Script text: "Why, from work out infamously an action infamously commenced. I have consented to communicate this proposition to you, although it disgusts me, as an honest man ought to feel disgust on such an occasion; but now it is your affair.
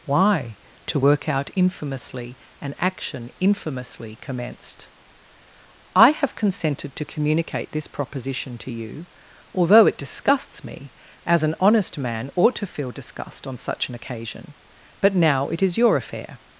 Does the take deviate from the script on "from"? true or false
true